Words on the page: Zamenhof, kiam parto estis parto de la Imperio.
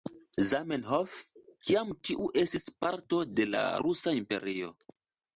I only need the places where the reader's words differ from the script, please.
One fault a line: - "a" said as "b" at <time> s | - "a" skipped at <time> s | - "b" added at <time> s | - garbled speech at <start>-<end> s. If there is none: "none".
- "parto" said as "tiu" at 2.1 s
- "Rusa" added at 3.8 s